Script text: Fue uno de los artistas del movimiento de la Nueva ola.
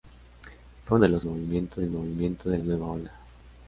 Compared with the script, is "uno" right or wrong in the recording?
wrong